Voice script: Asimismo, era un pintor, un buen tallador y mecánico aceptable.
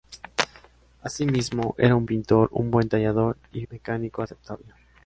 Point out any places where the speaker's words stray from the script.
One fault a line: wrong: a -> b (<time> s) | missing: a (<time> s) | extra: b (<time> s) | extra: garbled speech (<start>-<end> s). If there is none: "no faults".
no faults